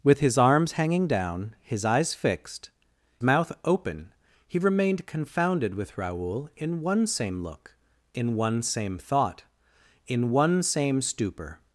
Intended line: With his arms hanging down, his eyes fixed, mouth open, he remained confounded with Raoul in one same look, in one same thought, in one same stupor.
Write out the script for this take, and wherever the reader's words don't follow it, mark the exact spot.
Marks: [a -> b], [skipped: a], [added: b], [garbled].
With his arms hanging down, his eyes fixed, mouth open, he remained confounded with Raoul in one same look, in one same thought, in one same stupor.